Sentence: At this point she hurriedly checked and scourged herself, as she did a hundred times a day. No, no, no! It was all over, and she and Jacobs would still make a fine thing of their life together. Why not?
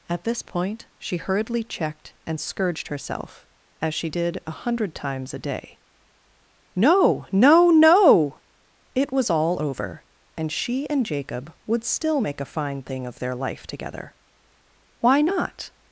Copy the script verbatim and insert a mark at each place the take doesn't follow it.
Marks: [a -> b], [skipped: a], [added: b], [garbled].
At this point she hurriedly checked and scourged herself, as she did a hundred times a day. No, no, no! It was all over, and she and [Jacobs -> Jacob] would still make a fine thing of their life together. Why not?